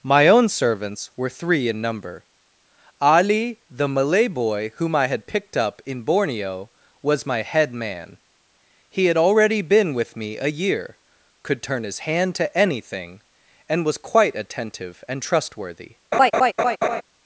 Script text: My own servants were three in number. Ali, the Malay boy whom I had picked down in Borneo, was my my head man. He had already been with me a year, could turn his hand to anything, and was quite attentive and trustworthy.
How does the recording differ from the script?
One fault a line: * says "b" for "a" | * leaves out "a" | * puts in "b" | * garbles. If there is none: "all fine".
* says "up" for "down"
* leaves out "my"